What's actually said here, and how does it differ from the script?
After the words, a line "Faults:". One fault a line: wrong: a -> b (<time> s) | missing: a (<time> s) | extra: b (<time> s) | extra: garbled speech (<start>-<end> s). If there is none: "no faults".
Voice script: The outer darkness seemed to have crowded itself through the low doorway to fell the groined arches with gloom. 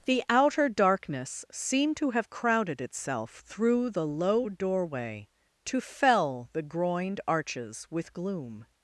The outer darkness seemed to have crowded itself through the low doorway to fell the groined arches with gloom.
Faults:
no faults